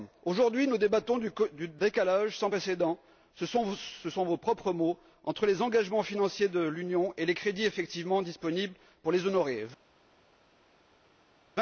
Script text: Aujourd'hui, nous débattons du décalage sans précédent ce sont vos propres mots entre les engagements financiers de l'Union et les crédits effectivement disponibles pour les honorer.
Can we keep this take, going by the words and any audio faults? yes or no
yes